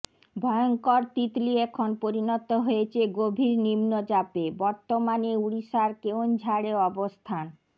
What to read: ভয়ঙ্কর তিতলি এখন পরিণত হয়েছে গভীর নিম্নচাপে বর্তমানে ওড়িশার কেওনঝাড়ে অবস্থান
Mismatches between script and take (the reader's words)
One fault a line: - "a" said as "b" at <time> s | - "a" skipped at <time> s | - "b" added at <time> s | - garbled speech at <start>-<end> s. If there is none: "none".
none